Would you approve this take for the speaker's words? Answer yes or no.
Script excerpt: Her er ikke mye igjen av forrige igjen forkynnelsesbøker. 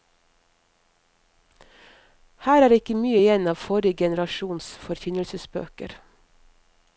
no